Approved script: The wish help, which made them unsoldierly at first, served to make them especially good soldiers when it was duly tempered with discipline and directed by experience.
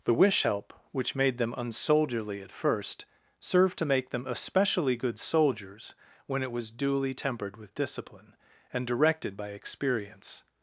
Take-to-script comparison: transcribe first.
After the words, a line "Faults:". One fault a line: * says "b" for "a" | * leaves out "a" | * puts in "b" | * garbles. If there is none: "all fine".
The wish help, which made them unsoldierly at first, served to make them especially good soldiers when it was duly tempered with discipline and directed by experience.
Faults:
all fine